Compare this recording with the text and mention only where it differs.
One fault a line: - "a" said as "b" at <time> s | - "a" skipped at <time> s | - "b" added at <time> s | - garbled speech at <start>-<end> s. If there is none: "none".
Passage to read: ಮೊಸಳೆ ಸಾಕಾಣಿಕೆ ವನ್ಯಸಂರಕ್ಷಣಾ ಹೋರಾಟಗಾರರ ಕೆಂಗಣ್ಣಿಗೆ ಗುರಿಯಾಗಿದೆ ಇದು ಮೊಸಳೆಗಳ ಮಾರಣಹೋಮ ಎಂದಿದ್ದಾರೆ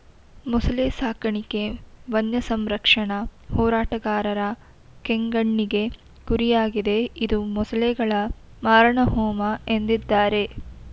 none